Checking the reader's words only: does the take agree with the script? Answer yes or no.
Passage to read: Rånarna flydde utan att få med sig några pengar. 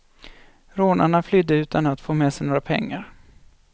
yes